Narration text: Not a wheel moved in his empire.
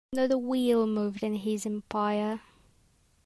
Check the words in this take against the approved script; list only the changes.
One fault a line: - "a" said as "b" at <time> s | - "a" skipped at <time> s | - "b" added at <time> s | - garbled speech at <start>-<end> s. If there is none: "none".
none